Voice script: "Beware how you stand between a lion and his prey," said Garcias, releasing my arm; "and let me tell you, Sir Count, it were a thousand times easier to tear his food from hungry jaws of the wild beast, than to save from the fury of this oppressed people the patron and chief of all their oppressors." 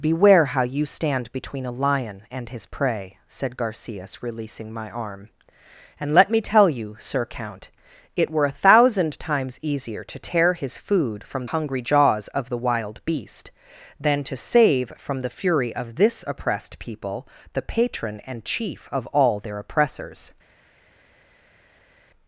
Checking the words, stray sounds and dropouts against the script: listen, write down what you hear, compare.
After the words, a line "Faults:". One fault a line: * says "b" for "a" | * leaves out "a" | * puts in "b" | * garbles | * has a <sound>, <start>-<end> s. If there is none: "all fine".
"Beware how you stand between a lion and his prey," said Garcias, releasing my arm; "and let me tell you, Sir Count, it were a thousand times easier to tear his food from hungry jaws of the wild beast, than to save from the fury of this oppressed people the patron and chief of all their oppressors."
Faults:
all fine